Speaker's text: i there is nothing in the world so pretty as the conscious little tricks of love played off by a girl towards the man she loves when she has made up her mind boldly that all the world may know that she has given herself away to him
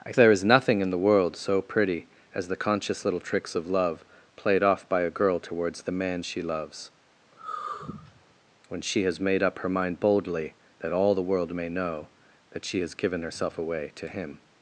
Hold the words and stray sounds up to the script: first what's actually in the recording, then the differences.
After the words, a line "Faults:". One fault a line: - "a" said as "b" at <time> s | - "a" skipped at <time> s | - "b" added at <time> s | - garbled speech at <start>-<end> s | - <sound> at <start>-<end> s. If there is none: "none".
i there is nothing in the world so pretty as the conscious little tricks of love played off by a girl towards the man she loves when she has made up her mind boldly that all the world may know that she has given herself away to him
Faults:
- sigh at 7.3-8.3 s